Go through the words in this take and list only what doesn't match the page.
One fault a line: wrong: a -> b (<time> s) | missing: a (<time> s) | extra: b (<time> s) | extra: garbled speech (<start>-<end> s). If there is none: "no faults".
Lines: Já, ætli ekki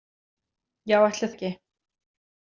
no faults